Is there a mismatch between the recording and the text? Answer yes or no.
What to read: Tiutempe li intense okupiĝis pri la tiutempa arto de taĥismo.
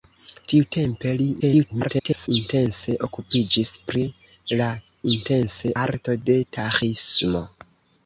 yes